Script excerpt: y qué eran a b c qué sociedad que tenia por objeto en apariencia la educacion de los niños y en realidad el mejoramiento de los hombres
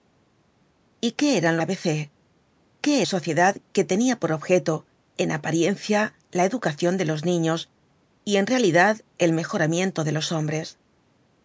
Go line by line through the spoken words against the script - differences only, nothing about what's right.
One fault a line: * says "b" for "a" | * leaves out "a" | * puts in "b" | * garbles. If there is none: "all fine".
all fine